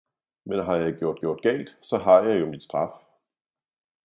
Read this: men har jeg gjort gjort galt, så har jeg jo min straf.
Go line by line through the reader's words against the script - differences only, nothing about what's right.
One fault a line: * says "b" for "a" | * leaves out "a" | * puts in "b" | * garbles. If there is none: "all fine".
all fine